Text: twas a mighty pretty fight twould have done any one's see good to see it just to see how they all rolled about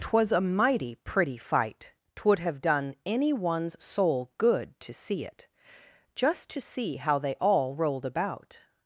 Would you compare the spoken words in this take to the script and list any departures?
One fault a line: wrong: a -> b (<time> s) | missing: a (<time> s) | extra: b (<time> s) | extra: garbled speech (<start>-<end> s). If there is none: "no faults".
wrong: see -> soul (3.8 s)